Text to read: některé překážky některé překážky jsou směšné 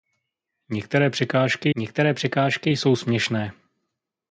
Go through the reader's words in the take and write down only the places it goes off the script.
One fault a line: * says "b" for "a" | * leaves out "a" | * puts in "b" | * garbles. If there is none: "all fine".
all fine